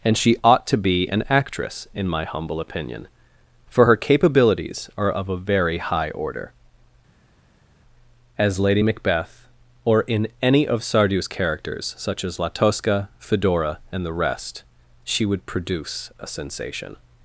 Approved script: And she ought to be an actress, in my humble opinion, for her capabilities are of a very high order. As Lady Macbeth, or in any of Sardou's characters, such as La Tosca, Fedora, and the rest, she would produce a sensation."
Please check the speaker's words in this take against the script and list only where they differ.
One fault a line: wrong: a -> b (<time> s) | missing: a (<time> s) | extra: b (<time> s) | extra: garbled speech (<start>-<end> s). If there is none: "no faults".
no faults